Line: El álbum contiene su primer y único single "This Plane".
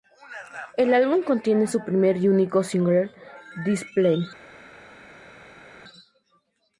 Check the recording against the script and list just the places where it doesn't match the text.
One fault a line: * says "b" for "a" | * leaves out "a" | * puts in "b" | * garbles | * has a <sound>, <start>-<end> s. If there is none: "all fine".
all fine